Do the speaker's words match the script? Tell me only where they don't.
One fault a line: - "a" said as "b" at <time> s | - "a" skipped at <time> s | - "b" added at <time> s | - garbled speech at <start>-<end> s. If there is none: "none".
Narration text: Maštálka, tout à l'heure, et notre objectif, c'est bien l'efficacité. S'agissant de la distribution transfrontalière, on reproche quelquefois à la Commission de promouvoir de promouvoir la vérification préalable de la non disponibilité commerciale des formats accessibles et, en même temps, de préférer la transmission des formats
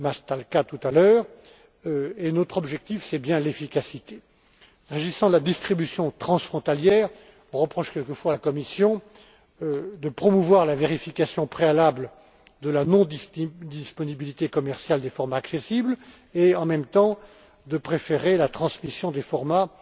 - "de promouvoir" skipped at 10.7 s